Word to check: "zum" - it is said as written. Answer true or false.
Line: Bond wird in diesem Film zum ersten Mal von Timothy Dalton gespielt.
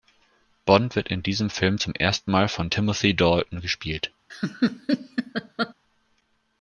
true